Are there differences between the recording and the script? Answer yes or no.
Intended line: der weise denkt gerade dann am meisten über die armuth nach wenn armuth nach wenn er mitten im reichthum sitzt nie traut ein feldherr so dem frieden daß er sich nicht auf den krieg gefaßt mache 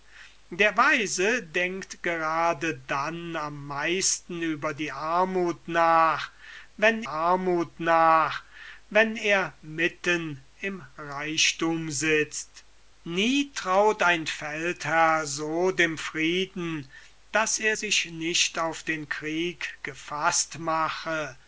no